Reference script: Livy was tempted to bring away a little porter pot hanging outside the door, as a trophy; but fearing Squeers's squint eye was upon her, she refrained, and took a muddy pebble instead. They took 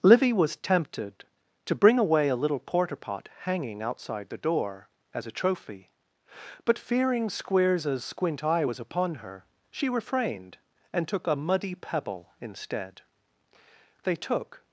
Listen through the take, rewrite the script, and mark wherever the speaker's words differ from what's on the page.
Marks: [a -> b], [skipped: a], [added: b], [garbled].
Livy was tempted to bring away a little porter pot hanging outside the door, as a trophy; but fearing Squeers's squint eye was upon her, she refrained, and took a muddy pebble instead. They took